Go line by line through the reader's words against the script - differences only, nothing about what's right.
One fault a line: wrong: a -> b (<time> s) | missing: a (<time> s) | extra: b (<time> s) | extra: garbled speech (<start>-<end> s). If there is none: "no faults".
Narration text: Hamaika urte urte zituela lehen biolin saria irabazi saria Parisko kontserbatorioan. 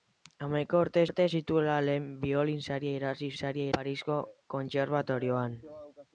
no faults